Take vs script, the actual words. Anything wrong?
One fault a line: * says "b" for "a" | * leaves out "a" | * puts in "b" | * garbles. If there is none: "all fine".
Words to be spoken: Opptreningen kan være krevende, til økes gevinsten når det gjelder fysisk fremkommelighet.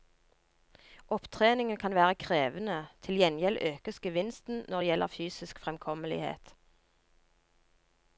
* puts in "gjengjeld"